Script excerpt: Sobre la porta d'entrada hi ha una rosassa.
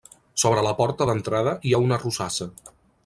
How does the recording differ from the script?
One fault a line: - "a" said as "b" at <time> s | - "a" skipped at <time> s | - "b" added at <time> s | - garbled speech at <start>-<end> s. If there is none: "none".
none